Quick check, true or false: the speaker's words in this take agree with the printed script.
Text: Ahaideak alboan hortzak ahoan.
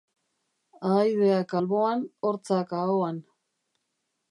true